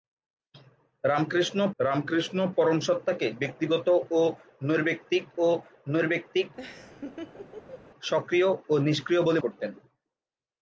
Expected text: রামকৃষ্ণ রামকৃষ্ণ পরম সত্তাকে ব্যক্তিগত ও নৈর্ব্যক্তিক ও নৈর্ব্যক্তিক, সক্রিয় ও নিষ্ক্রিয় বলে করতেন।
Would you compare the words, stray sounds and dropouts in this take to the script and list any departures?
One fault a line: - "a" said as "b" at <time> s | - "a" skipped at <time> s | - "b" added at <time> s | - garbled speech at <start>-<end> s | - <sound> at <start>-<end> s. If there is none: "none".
- laugh at 6.6-7.8 s